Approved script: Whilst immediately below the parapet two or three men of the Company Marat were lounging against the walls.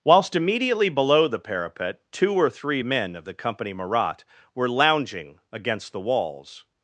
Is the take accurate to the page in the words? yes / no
yes